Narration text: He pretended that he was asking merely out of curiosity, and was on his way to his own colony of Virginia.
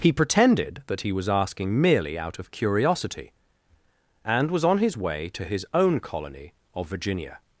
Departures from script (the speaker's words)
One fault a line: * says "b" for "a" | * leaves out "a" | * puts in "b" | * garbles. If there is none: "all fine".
all fine